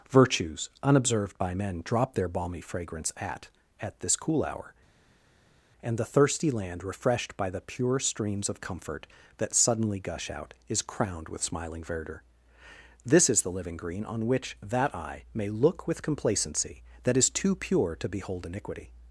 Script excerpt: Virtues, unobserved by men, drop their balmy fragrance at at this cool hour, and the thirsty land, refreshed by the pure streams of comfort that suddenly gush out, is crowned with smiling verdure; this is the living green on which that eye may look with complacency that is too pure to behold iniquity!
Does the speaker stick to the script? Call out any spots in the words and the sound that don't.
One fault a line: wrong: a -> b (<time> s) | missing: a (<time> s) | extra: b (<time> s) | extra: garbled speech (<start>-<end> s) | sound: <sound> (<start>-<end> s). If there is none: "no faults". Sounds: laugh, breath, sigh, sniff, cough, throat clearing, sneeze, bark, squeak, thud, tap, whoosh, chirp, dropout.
no faults